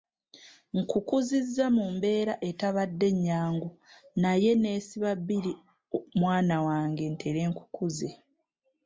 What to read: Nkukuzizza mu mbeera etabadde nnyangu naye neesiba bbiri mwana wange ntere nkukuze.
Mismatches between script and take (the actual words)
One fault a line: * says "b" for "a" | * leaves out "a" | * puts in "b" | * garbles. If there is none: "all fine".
all fine